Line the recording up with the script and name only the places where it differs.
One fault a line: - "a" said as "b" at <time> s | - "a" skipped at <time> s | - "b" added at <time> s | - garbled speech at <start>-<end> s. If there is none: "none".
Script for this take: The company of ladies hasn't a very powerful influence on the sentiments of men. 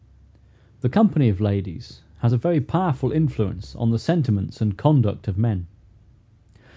- "hasn't" said as "has" at 2.2 s
- "and conduct" added at 4.6 s